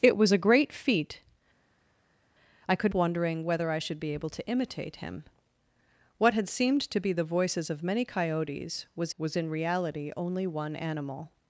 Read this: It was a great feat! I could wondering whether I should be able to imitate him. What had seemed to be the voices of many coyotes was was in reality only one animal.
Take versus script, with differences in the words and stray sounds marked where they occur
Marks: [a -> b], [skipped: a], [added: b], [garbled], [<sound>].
It was a great feat! I could wondering whether I should be able to imitate him. What had seemed to be the voices of many coyotes was was in reality only one animal.